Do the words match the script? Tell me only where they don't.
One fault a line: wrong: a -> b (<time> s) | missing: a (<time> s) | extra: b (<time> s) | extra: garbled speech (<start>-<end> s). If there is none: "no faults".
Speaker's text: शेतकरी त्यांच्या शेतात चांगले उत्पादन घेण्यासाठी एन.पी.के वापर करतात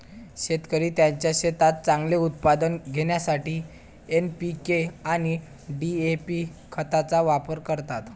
extra: आणि डी.ए.पी खतांचा (5.0 s)